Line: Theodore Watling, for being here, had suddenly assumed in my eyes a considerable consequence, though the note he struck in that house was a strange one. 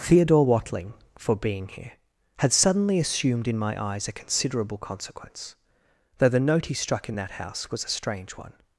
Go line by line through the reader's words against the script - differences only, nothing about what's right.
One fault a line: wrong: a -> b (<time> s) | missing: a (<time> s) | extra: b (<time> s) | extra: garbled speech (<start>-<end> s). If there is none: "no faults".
no faults